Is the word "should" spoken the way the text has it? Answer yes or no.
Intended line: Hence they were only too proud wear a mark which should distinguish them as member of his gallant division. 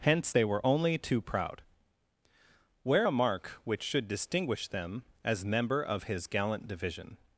yes